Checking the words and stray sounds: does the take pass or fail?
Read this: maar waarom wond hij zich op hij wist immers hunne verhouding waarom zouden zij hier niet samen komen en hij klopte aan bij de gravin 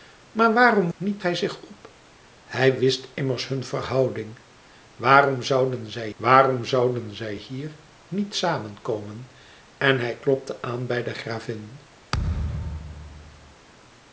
fail